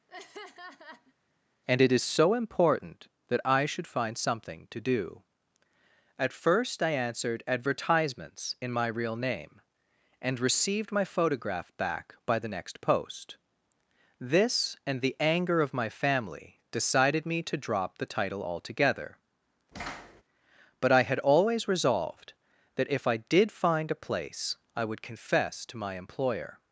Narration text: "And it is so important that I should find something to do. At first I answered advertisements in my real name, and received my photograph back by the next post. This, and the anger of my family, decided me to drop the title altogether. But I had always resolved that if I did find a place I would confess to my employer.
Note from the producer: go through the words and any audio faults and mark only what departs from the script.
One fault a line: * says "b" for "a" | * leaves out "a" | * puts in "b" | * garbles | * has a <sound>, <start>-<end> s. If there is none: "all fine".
* has a laugh, 0.1-1.1 s
* has a thud, 19.7-20.2 s